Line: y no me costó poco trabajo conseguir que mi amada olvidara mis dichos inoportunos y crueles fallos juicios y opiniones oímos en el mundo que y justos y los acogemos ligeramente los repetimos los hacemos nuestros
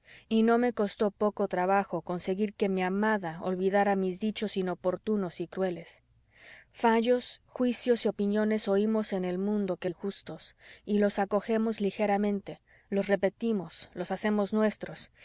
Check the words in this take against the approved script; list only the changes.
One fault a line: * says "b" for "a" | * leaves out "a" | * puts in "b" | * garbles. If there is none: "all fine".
all fine